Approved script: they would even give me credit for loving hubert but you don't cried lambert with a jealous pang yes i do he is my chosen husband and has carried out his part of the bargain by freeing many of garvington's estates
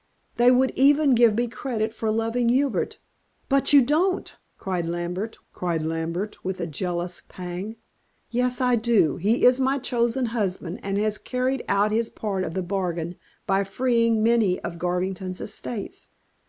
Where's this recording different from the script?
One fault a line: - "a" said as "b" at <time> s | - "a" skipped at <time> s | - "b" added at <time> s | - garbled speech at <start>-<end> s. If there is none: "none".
- "cried lambert" added at 5.5 s